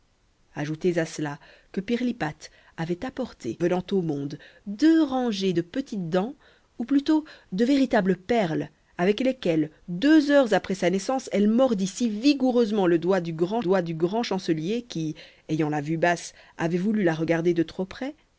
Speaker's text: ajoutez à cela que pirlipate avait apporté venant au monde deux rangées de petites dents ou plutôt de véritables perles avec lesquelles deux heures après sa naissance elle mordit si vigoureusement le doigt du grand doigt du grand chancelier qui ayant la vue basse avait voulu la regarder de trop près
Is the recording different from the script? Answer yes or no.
no